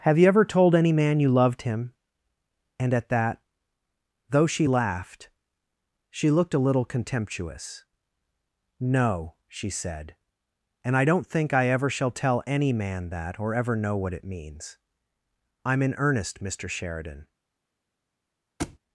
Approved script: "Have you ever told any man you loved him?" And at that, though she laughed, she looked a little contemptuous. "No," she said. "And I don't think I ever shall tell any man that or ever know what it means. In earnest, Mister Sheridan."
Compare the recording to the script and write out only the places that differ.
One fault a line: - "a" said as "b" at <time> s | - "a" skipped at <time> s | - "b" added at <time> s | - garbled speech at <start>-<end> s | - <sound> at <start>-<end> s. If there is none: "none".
- "I'm" added at 15.6 s
- thud at 18.6-18.8 s